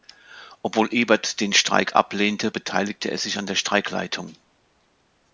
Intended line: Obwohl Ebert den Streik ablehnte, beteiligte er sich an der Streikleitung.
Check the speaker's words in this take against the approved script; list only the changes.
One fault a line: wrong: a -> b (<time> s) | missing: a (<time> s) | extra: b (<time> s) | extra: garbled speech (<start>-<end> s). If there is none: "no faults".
no faults